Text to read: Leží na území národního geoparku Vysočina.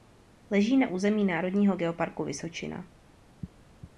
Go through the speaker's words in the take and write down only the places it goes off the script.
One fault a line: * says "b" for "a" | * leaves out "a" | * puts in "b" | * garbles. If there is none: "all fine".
all fine